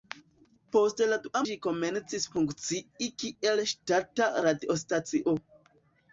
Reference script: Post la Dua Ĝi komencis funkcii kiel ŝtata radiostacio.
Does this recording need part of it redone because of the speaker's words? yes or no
no